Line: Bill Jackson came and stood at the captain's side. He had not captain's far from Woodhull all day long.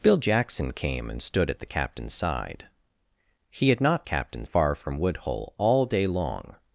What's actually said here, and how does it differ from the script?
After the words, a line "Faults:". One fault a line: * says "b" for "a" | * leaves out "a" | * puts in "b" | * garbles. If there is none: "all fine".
Bill Jackson came and stood at the captain's side. He had not captain's far from Woodhull all day long.
Faults:
all fine